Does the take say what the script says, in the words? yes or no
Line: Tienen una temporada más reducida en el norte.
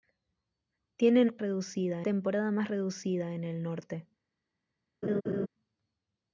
no